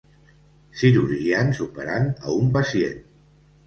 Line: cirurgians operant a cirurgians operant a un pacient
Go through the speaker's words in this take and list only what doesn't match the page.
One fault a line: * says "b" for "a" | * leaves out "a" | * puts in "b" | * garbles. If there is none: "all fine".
* leaves out "cirurgians operant a"